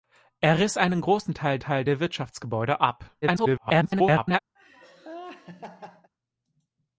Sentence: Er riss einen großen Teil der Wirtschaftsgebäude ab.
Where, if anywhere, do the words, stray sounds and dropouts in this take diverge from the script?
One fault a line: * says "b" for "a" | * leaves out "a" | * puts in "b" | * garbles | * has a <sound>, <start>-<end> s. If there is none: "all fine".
* puts in "Teil"
* garbles
* has a laugh, 4.5-6.1 s